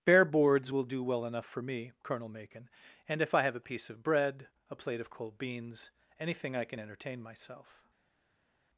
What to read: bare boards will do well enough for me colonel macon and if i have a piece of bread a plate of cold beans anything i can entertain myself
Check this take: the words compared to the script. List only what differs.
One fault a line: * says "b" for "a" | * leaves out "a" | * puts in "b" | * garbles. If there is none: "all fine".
all fine